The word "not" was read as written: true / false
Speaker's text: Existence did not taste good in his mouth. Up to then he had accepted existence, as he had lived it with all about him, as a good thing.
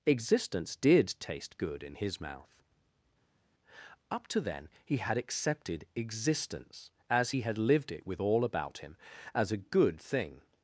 false